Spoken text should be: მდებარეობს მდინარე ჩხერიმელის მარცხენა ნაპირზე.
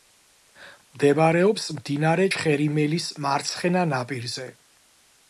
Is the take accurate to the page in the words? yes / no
yes